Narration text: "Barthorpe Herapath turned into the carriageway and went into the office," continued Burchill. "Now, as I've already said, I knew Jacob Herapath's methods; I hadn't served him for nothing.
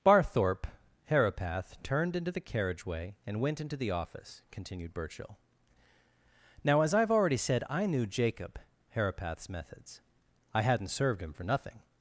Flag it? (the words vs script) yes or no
no